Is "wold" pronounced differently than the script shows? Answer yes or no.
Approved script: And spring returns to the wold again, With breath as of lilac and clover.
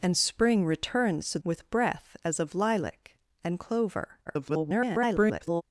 yes